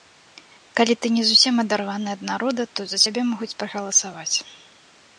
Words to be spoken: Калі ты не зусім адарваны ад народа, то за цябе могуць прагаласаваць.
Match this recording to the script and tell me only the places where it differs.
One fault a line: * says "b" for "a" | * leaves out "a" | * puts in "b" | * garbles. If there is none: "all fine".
all fine